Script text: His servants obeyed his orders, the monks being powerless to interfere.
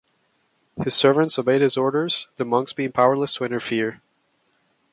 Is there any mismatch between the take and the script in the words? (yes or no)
no